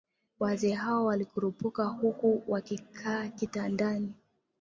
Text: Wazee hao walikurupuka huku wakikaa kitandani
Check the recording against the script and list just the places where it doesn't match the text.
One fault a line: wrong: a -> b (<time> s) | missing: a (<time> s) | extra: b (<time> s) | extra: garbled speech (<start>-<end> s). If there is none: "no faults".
no faults